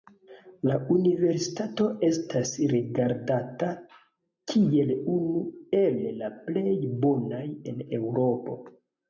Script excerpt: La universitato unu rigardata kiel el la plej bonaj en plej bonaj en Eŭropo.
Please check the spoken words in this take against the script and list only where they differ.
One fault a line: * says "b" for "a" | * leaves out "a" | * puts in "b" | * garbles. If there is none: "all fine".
* says "estas" for "unu"
* puts in "unu"
* leaves out "plej bonaj en"